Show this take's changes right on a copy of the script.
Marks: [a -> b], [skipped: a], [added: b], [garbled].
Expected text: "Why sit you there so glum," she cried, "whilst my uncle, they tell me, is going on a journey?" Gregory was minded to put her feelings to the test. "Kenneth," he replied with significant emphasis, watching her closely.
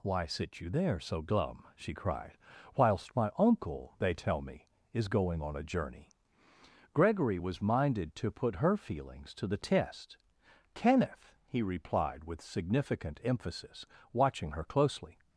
"Why sit you there so glum," she cried, "whilst my uncle, they tell me, is going on a journey?" Gregory was minded to put her feelings to the test. "Kenneth," he replied with significant emphasis, watching her closely.